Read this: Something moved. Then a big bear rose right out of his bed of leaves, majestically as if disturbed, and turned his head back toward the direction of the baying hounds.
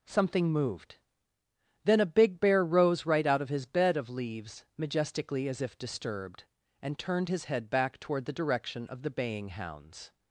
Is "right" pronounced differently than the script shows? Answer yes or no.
no